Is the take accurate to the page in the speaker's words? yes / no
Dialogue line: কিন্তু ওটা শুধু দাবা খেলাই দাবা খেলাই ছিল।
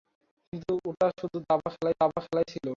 yes